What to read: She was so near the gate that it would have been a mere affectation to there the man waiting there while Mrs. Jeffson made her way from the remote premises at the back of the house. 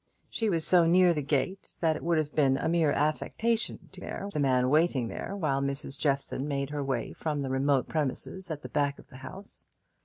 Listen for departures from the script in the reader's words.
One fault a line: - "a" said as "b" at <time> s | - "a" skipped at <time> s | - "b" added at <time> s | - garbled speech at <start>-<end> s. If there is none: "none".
none